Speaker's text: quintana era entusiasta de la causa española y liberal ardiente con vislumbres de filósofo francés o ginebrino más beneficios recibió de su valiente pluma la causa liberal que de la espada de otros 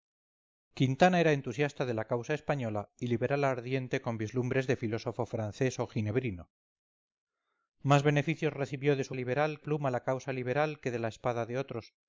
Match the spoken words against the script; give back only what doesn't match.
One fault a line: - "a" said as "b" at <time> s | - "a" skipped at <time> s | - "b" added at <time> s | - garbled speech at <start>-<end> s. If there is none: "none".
- "valiente" said as "liberal" at 9.1 s